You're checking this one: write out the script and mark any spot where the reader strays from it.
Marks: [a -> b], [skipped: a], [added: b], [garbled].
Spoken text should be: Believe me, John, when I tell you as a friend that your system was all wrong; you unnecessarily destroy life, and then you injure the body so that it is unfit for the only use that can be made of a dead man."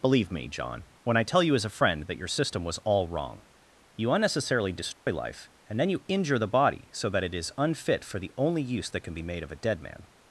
Believe me, John, when I tell you as a friend that your system was all wrong; you unnecessarily destroy life, and then you injure the body so that it is unfit for the only use that can be made of a dead man."